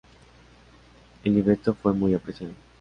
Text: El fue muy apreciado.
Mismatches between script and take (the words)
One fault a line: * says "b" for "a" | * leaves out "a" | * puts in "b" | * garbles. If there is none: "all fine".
* puts in "libreto"